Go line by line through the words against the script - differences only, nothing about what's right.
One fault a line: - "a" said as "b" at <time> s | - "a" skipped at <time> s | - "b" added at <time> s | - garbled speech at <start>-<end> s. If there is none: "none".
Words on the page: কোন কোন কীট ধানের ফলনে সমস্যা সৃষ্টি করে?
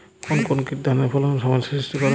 none